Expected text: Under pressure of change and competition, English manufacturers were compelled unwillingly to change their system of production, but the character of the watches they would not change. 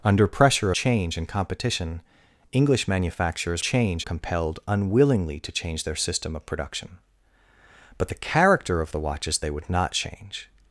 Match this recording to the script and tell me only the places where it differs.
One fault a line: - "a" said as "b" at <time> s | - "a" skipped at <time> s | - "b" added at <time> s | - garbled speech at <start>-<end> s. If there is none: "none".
- "of" skipped at 0.7 s
- "were" said as "change" at 3.6 s